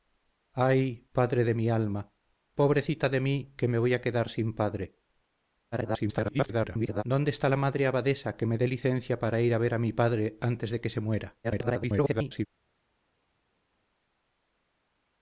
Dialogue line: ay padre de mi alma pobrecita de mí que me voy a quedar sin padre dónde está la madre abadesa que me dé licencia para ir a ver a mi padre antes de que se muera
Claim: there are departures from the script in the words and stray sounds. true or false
true